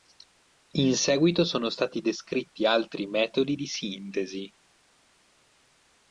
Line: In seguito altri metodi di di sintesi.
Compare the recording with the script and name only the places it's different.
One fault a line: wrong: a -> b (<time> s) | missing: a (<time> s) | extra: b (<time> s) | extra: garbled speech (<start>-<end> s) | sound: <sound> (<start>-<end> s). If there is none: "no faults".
extra: sono stati descritti (1.4 s)
missing: di (3.7 s)